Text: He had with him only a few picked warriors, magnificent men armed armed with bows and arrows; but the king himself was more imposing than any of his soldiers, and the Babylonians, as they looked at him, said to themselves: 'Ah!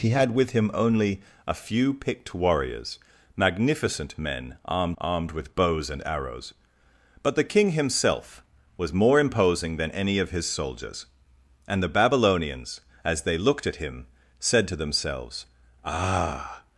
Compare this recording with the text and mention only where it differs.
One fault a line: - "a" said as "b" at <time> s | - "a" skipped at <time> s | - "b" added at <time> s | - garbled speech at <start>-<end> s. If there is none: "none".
none